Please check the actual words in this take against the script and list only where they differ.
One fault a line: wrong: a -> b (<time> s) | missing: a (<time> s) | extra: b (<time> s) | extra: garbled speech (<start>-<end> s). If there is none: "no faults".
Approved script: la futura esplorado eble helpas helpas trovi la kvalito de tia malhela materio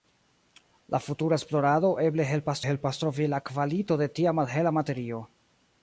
no faults